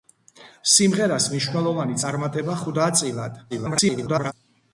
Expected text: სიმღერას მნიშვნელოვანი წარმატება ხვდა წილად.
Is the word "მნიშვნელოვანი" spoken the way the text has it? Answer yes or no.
yes